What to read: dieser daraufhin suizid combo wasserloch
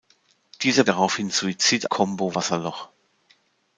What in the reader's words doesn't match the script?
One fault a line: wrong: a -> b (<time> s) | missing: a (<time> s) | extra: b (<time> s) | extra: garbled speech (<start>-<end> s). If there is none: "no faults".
no faults